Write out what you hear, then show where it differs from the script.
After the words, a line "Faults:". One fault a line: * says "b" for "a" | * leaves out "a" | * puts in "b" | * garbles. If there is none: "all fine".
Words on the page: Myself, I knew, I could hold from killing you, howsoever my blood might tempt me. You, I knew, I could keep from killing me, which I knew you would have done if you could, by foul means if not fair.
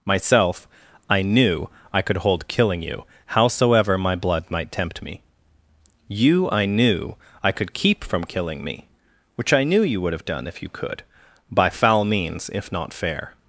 Myself, I knew, I could hold killing you, howsoever my blood might tempt me. You, I knew, I could keep from killing me, which I knew you would have done if you could, by foul means if not fair.
Faults:
* leaves out "from"